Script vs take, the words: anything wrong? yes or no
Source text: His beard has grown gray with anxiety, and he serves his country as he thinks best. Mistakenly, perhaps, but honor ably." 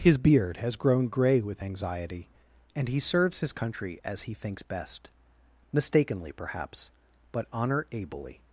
no